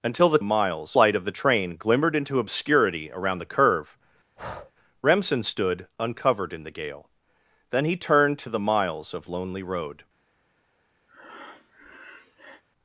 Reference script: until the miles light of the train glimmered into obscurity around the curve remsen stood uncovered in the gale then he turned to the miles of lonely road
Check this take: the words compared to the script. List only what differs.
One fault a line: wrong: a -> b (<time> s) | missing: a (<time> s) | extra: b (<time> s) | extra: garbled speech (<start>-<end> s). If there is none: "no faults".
no faults